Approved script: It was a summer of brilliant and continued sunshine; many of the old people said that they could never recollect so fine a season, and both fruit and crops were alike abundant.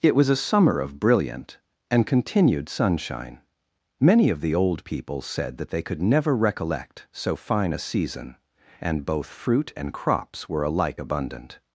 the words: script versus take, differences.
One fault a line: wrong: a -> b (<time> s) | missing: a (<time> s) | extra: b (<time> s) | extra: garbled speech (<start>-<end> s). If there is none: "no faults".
no faults